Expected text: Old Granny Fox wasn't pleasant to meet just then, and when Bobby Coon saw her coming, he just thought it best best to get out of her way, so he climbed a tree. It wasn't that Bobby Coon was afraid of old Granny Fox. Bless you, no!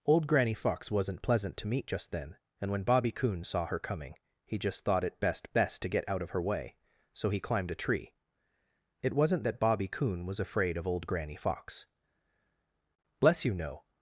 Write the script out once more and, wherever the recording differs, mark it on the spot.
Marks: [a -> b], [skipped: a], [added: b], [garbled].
Old Granny Fox wasn't pleasant to meet just then, and when Bobby Coon saw her coming, he just thought it best best to get out of her way, so he climbed a tree. It wasn't that Bobby Coon was afraid of old Granny Fox. Bless you, no!